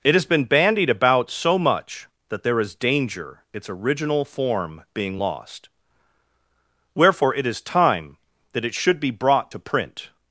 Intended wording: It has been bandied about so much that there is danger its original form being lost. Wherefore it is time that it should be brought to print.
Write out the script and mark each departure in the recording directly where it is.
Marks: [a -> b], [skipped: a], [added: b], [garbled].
It has been bandied about so much that there is danger its original form being lost. Wherefore it is time that it should be brought to print.